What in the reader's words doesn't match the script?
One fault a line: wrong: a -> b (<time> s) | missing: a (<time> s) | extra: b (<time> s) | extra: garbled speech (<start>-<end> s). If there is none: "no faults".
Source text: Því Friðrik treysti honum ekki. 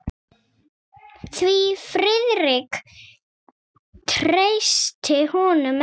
no faults